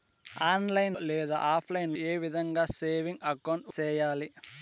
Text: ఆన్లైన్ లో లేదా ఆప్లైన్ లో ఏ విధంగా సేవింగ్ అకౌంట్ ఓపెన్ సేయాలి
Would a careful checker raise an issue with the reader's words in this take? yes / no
yes